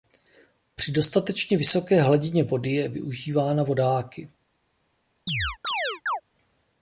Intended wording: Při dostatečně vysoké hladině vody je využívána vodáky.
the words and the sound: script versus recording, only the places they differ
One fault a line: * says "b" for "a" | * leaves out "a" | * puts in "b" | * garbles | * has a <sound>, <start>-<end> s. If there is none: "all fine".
* has a chirp, 5.3-6.2 s